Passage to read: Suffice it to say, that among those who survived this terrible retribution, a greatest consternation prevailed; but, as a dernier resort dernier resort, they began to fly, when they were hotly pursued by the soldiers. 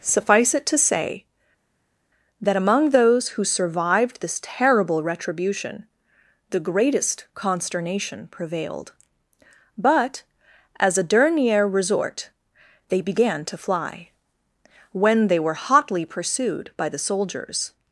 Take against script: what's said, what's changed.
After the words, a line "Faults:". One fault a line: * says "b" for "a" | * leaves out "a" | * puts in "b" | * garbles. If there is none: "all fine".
Suffice it to say, that among those who survived this terrible retribution, the greatest consternation prevailed; but, as a dernier resort, they began to fly, when they were hotly pursued by the soldiers.
Faults:
* says "the" for "a"
* leaves out "dernier resort"